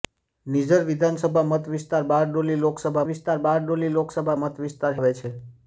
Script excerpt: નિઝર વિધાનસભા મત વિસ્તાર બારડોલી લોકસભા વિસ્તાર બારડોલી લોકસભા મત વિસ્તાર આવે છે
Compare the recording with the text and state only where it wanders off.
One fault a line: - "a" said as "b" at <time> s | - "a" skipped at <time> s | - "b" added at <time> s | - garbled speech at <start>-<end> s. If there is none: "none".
none